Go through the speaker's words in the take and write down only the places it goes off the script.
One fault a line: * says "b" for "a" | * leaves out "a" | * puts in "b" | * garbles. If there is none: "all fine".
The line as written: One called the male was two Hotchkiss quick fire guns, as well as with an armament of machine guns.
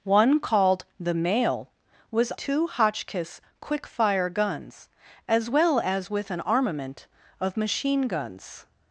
all fine